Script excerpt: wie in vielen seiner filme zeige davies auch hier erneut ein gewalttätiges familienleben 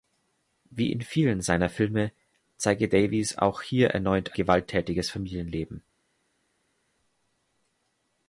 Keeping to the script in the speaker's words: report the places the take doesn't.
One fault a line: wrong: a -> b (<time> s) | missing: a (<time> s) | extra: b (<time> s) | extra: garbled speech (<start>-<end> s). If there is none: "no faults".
missing: ein (4.4 s)